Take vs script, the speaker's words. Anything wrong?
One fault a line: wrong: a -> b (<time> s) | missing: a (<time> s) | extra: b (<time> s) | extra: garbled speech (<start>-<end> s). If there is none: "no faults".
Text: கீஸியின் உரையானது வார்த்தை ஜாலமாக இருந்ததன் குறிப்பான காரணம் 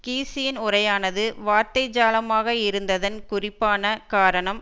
no faults